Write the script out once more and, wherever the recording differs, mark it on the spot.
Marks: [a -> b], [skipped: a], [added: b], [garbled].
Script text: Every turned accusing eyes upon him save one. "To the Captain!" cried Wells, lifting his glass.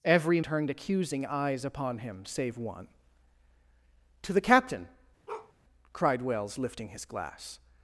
Every turned accusing eyes upon him save one. "To the Captain!" cried Wells, lifting his glass.